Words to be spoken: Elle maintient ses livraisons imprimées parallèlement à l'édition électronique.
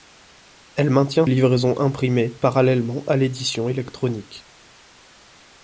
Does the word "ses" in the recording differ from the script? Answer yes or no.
yes